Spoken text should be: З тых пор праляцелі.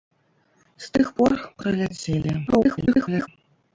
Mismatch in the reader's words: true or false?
true